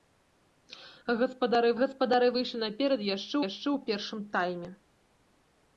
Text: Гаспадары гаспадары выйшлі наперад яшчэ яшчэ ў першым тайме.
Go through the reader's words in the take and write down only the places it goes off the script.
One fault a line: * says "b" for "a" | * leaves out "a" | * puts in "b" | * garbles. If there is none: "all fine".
all fine